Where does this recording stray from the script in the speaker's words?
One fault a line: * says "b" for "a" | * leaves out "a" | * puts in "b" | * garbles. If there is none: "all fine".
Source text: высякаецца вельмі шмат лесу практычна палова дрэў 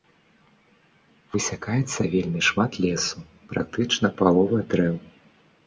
all fine